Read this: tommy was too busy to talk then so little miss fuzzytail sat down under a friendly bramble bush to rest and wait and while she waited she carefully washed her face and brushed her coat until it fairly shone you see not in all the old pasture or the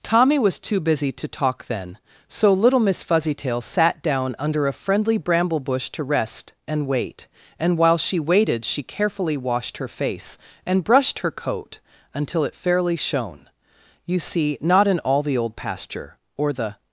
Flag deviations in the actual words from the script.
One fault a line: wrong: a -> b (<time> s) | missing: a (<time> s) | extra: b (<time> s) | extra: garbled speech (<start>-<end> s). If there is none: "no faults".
no faults